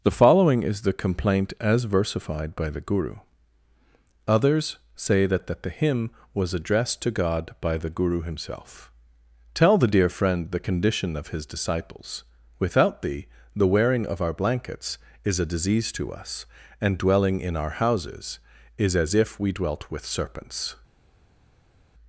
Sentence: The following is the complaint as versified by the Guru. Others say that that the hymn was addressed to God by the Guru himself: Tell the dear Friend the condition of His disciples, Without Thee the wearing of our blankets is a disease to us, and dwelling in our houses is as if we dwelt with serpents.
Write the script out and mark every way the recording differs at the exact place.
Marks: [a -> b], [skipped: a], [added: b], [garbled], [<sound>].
The following is the complaint as versified by the Guru. Others say that that the hymn was addressed to God by the Guru himself: Tell the dear Friend the condition of His disciples, Without Thee the wearing of our blankets is a disease to us, and dwelling in our houses is as if we dwelt with serpents.